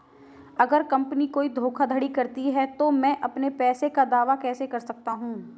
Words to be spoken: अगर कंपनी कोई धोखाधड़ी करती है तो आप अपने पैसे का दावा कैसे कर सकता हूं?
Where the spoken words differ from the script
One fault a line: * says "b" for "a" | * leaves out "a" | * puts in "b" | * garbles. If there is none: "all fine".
* says "मैं" for "आप"